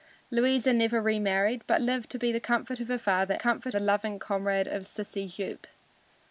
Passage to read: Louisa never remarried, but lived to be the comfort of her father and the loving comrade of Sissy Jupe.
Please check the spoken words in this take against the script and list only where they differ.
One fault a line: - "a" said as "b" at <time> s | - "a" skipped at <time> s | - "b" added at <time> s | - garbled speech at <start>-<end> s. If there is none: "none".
- "and" said as "comfort" at 3.3 s